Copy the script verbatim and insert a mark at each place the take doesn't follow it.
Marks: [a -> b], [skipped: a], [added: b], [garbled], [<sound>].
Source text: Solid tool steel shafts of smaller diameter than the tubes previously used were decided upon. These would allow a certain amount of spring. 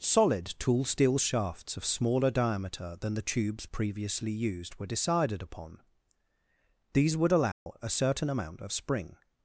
Solid tool steel shafts of smaller diameter than the tubes previously used were decided upon. These would allow [dropout] a certain amount of spring.